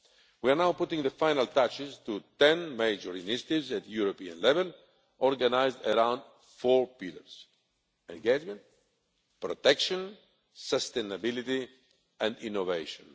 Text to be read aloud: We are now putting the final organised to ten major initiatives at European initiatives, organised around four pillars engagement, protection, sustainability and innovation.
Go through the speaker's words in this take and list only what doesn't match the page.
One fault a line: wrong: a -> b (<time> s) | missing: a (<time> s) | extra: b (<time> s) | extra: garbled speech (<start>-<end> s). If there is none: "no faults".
wrong: organised -> touches (1.5 s)
wrong: initiatives -> level (4.4 s)